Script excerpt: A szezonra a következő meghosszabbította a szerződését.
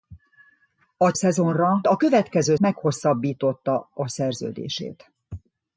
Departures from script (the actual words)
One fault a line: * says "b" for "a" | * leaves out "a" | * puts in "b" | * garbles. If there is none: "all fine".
all fine